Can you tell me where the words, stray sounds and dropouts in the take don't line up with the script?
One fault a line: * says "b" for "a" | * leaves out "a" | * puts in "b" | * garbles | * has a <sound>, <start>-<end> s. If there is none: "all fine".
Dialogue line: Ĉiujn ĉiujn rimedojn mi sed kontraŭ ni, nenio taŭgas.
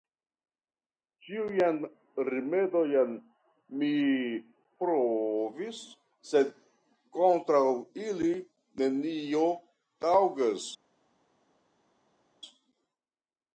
* leaves out "ĉiujn"
* puts in "provis"
* says "ili" for "ni"